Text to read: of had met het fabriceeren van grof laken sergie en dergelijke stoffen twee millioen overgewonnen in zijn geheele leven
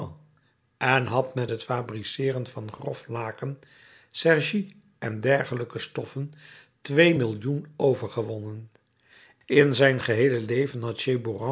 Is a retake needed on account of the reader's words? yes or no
yes